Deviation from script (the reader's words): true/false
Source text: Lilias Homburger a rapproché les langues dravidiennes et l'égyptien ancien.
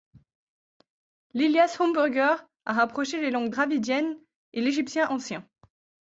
false